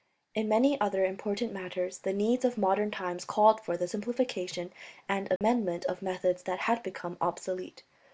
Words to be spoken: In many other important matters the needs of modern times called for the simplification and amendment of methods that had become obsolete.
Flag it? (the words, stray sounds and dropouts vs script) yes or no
yes